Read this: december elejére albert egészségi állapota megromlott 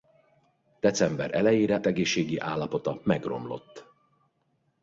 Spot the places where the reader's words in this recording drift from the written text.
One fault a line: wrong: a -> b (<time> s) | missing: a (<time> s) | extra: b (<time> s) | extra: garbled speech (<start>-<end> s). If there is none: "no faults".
missing: albert (1.8 s)